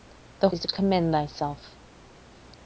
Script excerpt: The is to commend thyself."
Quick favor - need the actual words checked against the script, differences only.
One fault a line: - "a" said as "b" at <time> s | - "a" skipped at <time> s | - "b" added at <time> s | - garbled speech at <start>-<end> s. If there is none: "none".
none